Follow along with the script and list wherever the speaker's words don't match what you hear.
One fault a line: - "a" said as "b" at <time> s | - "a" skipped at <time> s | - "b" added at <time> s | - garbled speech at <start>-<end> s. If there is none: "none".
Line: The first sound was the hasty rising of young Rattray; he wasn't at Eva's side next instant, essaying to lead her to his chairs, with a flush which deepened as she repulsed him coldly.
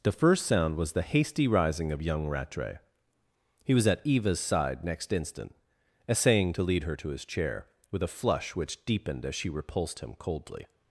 - "wasn't" said as "was" at 3.8 s
- "chairs" said as "chair" at 7.2 s